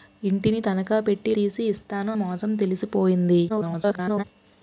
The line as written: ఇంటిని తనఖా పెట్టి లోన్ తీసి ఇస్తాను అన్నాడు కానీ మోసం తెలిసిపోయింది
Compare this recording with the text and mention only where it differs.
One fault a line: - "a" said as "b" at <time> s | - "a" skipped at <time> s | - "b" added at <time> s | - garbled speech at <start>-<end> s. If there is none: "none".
- "లోన్" skipped at 1.3 s
- "అన్నాడు కానీ" skipped at 2.1 s
- garbled speech at 3.5-4.2 s